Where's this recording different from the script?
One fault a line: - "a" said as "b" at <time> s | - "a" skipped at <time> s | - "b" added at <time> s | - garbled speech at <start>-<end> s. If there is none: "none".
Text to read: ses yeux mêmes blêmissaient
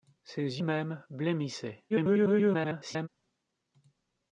- "yeux" skipped at 0.6 s
- garbled speech at 1.9-3.1 s